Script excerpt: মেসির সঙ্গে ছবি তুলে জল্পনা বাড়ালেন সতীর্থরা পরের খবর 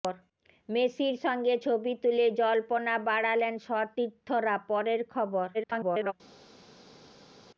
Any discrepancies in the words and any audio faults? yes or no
yes